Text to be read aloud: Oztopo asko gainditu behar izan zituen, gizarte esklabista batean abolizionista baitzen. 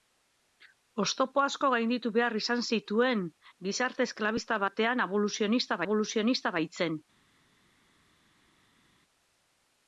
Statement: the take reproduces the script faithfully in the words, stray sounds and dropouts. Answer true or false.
false